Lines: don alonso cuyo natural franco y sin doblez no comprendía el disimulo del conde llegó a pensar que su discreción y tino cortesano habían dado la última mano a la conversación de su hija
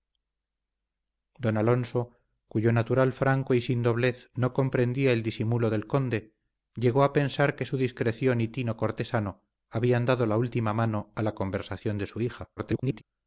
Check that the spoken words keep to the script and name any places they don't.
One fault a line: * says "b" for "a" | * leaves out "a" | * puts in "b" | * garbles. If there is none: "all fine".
* garbles